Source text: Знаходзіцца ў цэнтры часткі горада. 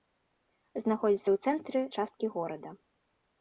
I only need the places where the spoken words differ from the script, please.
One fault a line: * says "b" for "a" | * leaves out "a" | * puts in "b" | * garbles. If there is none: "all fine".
all fine